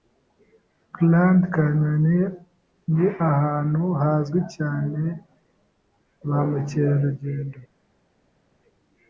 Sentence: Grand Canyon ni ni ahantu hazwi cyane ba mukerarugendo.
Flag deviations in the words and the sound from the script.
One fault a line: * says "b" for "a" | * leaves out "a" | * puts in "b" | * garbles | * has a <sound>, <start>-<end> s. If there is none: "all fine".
* leaves out "ni"